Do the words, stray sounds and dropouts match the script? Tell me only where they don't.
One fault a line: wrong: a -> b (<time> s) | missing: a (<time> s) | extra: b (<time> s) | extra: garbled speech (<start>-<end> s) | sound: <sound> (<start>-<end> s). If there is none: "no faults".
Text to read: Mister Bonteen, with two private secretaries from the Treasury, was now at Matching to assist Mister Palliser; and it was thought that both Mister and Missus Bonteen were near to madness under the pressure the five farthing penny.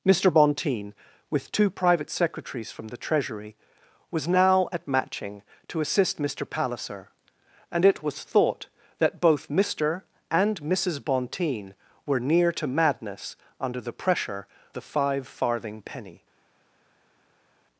no faults